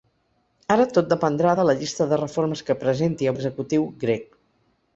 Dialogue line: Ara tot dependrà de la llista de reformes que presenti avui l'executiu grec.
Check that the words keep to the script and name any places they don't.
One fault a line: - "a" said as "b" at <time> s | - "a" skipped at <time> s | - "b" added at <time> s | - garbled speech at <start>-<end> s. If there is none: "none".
- "avui" skipped at 3.3 s